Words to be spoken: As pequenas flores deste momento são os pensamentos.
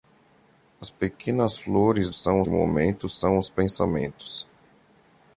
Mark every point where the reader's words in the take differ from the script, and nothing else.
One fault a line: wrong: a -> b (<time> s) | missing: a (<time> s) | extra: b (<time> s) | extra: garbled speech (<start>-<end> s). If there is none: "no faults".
wrong: deste -> são (2.1 s)